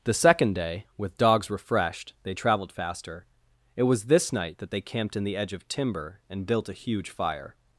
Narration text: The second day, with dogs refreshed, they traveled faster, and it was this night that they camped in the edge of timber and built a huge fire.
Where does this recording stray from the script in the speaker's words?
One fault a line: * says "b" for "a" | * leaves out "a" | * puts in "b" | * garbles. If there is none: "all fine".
* leaves out "and"